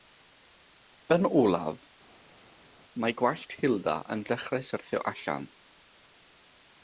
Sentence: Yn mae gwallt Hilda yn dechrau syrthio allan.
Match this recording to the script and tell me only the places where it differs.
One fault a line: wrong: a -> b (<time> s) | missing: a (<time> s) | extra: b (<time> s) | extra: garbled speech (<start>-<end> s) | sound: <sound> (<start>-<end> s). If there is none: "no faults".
extra: olaf (1.4 s)